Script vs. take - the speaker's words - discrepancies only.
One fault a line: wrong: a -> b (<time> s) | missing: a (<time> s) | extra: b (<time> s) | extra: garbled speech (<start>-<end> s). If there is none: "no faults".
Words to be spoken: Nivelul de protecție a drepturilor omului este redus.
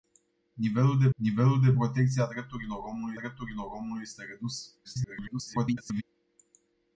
extra: nivelul de (1.1 s)
extra: drepturilor omului (3.1 s)
extra: garbled speech (4.8-6.0 s)